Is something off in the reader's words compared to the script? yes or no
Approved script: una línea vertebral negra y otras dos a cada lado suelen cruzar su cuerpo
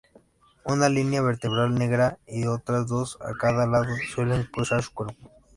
no